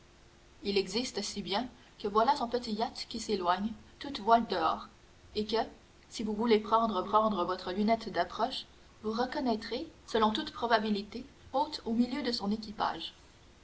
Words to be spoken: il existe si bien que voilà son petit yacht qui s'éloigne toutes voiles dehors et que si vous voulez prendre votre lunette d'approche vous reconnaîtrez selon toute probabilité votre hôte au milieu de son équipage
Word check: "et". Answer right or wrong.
right